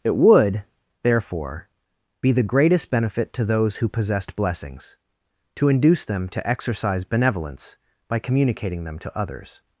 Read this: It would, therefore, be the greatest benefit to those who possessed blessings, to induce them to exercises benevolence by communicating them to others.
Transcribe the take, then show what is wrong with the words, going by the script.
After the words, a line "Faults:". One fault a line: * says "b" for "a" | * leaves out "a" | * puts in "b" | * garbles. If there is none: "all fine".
It would, therefore, be the greatest benefit to those who possessed blessings, to induce them to exercise benevolence by communicating them to others.
Faults:
* says "exercise" for "exercises"